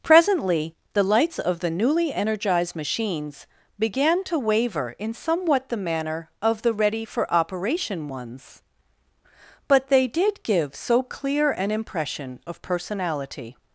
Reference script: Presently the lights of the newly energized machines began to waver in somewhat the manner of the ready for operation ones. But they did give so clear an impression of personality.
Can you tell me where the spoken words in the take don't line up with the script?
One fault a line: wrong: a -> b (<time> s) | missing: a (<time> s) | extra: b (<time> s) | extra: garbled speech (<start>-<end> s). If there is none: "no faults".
no faults